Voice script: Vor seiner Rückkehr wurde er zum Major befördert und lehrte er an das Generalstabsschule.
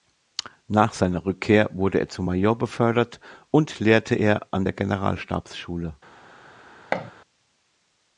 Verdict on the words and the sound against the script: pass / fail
fail